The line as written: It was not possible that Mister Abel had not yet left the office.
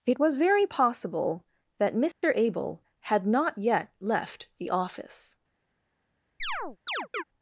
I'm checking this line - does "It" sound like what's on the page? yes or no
yes